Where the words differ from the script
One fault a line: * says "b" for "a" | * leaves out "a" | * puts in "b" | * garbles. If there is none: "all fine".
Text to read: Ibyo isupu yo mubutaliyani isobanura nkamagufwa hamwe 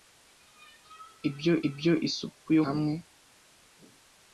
* puts in "ibyo"
* leaves out "mubutaliyani isobanura nkamagufwa"